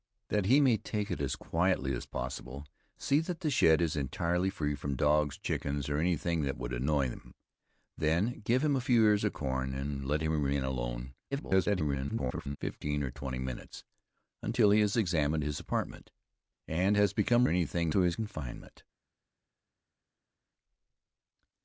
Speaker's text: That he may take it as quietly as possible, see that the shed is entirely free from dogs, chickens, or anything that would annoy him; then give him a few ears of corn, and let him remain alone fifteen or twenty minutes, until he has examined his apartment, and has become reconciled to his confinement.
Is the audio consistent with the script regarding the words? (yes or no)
no